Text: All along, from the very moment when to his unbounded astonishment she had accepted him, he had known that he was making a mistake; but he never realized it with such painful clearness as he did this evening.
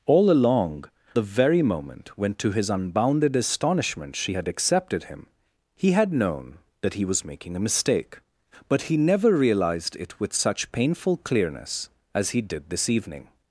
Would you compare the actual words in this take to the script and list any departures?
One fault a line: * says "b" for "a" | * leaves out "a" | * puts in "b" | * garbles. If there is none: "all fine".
* leaves out "from"